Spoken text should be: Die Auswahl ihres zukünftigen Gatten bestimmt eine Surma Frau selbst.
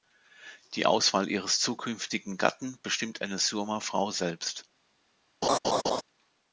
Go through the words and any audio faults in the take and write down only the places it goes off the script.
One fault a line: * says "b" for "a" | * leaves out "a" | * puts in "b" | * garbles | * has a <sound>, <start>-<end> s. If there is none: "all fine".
* has a laugh, 5.4-6.0 s